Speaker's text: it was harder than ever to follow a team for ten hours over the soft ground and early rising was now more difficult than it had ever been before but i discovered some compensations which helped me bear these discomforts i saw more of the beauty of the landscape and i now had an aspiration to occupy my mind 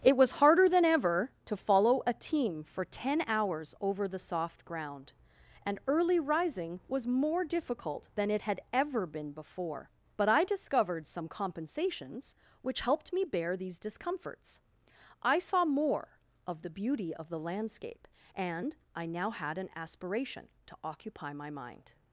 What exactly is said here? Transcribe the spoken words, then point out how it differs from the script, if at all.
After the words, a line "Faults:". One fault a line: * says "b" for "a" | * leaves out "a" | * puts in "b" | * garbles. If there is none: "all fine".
it was harder than ever to follow a team for ten hours over the soft ground and early rising was more difficult than it had ever been before but i discovered some compensations which helped me bear these discomforts i saw more of the beauty of the landscape and i now had an aspiration to occupy my mind
Faults:
* leaves out "now"